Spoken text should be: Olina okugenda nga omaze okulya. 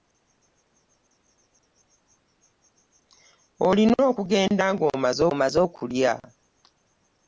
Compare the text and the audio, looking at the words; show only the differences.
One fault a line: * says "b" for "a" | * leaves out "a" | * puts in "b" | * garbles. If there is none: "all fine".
* puts in "omaze"